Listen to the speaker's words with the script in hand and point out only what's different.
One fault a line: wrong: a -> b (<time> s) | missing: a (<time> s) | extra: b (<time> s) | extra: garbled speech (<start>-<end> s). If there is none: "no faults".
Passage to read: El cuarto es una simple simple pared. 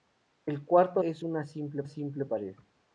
no faults